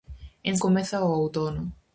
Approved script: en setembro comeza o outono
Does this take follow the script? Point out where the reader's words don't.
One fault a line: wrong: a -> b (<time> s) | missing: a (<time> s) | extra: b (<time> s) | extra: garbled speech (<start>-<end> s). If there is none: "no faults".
missing: setembro (0.6 s)